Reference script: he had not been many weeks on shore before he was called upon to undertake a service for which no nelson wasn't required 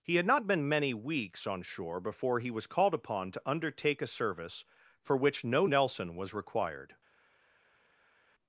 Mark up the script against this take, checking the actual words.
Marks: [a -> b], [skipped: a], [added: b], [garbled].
he had not been many weeks on shore before he was called upon to undertake a service for which no nelson [wasn't -> was] required